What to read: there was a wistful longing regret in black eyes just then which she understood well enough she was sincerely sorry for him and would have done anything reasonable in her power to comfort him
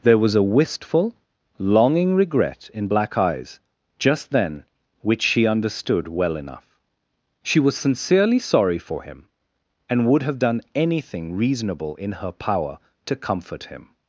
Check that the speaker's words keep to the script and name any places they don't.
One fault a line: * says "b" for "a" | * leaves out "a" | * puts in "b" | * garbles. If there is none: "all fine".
all fine